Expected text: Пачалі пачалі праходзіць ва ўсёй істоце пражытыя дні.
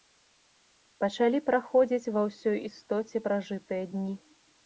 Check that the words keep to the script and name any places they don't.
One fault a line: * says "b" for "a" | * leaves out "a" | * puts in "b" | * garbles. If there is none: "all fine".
* leaves out "пачалі"